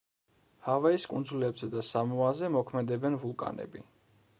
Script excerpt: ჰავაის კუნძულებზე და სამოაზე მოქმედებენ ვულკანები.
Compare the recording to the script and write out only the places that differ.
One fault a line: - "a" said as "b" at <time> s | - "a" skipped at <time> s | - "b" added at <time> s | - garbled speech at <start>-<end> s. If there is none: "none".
none